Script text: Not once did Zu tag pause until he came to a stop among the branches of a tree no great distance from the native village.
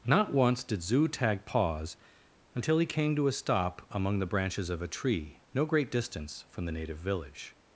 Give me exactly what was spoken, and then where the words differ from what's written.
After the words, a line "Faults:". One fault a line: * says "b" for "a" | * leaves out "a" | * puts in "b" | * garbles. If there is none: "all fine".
Not once did Zu tag pause until he came to a stop among the branches of a tree no great distance from the native village.
Faults:
all fine